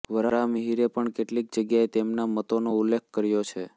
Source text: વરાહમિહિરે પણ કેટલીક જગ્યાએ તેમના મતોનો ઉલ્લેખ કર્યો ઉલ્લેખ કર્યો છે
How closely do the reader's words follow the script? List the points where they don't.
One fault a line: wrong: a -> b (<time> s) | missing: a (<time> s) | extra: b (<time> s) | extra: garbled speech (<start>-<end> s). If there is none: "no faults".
missing: ઉલ્લેખ કર્યો (3.4 s)